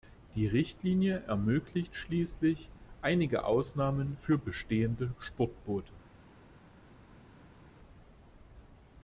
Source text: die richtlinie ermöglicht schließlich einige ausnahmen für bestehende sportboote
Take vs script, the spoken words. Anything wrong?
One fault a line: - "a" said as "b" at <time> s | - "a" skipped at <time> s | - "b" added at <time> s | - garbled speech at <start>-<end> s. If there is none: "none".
none